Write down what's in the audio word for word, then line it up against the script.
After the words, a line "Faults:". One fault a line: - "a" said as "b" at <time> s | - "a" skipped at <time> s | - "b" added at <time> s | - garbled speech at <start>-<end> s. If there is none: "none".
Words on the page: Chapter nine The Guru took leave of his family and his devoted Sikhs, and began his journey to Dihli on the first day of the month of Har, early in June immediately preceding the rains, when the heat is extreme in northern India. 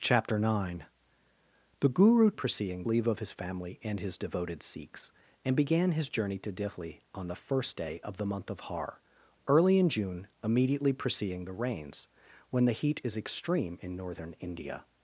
Chapter nine The Guru preceding leave of his family and his devoted Sikhs, and began his journey to Dihli on the first day of the month of Har, early in June immediately preceding the rains, when the heat is extreme in northern India.
Faults:
- "took" said as "preceding" at 2.3 s